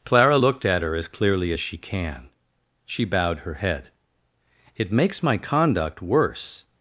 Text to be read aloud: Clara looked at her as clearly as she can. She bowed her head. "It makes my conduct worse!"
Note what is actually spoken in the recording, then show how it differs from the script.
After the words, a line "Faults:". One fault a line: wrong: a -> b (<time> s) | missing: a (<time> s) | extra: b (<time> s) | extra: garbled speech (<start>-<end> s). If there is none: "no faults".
Clara looked at her as clearly as she can. She bowed her head. "It makes my conduct worse!"
Faults:
no faults